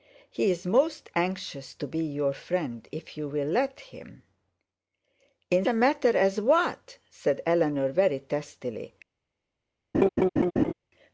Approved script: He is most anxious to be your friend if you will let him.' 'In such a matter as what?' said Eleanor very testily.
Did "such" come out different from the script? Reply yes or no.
yes